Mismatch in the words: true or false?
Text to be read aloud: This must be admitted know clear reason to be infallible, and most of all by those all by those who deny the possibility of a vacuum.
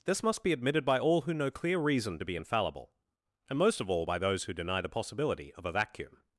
true